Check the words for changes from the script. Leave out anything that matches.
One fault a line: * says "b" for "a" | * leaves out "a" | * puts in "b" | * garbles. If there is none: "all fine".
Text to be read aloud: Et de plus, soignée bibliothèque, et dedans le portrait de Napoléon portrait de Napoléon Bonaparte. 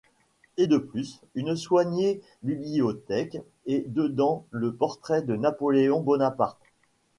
* puts in "une"
* leaves out "portrait de Napoléon"